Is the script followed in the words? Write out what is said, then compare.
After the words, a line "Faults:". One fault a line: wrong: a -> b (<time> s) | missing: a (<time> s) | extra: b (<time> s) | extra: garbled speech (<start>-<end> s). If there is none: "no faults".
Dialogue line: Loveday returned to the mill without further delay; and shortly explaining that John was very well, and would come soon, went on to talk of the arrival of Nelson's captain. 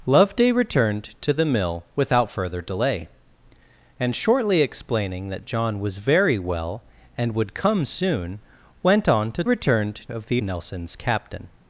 Loveday returned to the mill without further delay; and shortly explaining that John was very well, and would come soon, went on to returned of the Nelson's captain.
Faults:
wrong: talk -> returned (9.4 s)
missing: arrival of (10.4 s)